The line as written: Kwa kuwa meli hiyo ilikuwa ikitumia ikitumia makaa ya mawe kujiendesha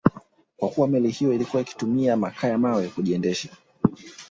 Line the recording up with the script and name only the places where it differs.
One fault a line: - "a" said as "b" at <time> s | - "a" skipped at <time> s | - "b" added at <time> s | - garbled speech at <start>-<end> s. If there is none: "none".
- "ikitumia" skipped at 2.2 s